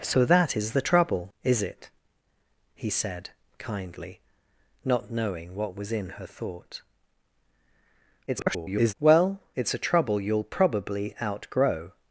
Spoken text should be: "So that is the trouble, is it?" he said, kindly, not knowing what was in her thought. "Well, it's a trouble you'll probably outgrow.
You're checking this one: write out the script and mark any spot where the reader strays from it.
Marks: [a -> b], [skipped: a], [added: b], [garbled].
"So that is the trouble, is it?" he said, kindly, not knowing what was in her thought. [garbled] "Well, it's a trouble you'll probably outgrow.